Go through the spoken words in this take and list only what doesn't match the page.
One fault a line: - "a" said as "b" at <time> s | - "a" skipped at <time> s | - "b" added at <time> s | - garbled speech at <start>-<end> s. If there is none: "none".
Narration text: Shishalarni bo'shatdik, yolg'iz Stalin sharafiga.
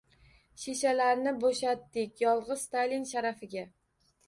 none